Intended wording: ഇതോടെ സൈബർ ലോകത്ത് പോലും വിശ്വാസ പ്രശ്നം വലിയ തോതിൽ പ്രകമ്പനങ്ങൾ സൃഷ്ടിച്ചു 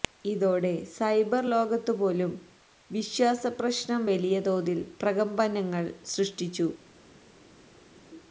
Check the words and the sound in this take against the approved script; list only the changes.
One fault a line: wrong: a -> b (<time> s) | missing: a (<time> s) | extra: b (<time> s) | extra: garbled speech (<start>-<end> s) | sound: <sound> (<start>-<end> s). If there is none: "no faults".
no faults